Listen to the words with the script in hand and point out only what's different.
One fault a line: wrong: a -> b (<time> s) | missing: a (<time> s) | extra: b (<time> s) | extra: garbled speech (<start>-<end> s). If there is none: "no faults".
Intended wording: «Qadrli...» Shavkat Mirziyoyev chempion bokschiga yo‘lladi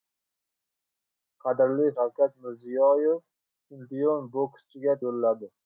no faults